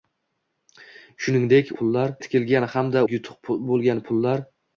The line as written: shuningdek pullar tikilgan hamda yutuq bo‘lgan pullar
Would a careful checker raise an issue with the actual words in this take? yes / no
no